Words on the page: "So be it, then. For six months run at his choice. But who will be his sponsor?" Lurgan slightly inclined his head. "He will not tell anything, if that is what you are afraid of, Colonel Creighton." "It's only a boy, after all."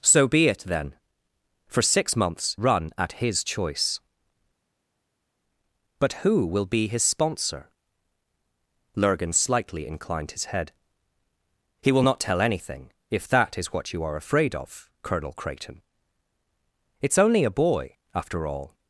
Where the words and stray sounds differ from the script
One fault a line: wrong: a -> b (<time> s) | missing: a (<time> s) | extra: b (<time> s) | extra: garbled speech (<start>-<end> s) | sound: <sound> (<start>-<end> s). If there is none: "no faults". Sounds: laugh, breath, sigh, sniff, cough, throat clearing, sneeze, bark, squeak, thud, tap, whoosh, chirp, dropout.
no faults